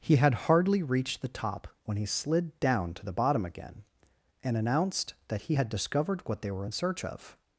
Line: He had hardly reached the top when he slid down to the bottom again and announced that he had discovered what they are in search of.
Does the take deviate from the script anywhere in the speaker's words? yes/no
yes